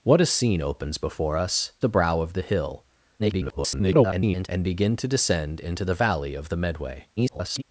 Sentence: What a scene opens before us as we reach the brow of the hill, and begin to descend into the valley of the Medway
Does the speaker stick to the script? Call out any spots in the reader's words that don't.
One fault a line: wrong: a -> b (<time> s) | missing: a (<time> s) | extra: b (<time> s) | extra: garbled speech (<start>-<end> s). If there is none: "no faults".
missing: as we reach (1.7 s)
extra: garbled speech (3.2-4.5 s)
extra: garbled speech (7.2-7.6 s)